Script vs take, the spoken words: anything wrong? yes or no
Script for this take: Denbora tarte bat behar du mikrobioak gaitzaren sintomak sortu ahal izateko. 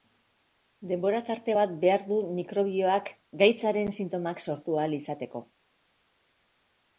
no